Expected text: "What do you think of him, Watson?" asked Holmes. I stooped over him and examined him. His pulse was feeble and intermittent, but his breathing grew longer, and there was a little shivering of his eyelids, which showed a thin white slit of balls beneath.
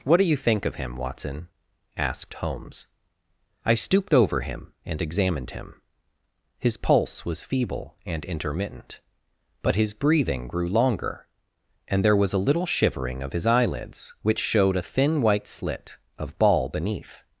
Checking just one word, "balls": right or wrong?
wrong